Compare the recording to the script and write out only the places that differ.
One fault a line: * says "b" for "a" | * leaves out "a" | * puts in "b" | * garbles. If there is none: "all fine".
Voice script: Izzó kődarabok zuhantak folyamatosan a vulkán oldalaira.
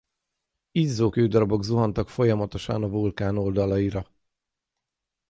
all fine